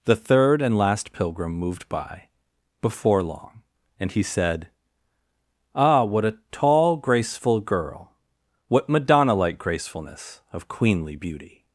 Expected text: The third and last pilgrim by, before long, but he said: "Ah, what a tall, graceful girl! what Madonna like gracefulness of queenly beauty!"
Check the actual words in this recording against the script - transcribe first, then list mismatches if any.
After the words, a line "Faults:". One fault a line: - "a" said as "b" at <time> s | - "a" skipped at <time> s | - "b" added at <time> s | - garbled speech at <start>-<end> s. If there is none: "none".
The third and last pilgrim moved by, before long, and he said: "Ah, what a tall, graceful girl! what Madonna like gracefulness of queenly beauty!"
Faults:
- "moved" added at 1.5 s
- "but" said as "and" at 4.0 s